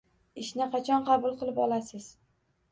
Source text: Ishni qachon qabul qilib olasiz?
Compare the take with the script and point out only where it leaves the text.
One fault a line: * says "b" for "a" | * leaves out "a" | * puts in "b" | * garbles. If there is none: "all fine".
all fine